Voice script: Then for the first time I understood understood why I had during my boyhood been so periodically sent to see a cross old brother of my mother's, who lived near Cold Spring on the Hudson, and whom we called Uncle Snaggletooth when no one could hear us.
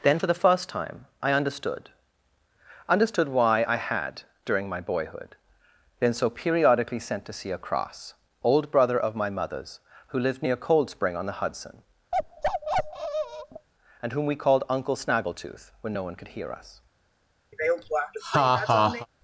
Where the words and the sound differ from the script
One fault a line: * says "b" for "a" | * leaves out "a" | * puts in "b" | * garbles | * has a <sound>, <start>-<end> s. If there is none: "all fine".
* has a bark, 12.1-13.7 s
* has a laugh, 17.5-19.1 s